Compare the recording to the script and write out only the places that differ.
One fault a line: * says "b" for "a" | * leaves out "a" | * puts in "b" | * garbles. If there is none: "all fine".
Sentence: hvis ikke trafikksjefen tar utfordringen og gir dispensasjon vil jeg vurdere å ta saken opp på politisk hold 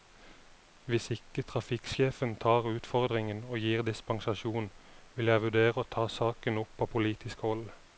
all fine